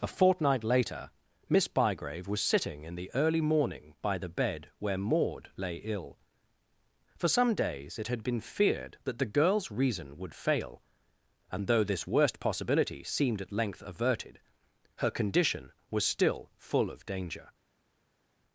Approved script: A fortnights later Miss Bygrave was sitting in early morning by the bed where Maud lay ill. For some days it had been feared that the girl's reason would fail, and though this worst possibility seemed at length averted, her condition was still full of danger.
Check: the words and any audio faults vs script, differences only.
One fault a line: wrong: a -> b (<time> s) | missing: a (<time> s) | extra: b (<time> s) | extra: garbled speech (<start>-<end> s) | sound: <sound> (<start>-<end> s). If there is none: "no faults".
wrong: fortnights -> fortnight (0.1 s)
extra: the (3.0 s)